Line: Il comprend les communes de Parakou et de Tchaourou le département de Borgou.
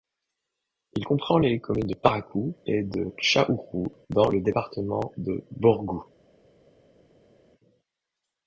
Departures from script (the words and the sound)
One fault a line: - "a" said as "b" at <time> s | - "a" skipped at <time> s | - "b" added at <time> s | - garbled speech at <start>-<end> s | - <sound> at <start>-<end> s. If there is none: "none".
- "dans" added at 4.1 s